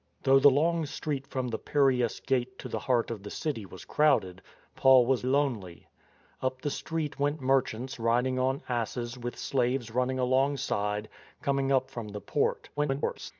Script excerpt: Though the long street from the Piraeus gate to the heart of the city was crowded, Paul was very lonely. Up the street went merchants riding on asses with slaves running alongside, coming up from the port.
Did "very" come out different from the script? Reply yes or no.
yes